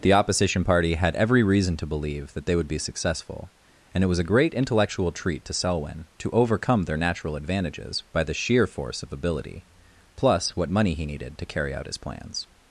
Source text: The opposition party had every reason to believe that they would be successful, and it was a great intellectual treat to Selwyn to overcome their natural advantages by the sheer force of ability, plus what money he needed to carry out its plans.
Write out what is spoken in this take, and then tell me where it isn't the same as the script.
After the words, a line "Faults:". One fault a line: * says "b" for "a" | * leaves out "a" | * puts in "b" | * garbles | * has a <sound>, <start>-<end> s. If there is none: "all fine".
The opposition party had every reason to believe that they would be successful, and it was a great intellectual treat to Selwyn to overcome their natural advantages by the sheer force of ability, plus what money he needed to carry out his plans.
Faults:
* says "his" for "its"